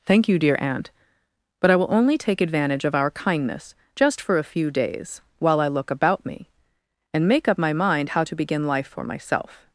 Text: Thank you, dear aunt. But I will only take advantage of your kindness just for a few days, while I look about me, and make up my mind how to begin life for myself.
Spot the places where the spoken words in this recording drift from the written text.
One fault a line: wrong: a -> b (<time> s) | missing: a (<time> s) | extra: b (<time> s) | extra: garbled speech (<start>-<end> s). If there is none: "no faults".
wrong: your -> our (3.0 s)